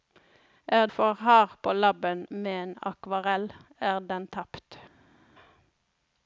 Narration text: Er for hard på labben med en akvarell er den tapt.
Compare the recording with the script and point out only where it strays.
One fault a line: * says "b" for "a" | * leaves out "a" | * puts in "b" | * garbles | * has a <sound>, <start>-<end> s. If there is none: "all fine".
all fine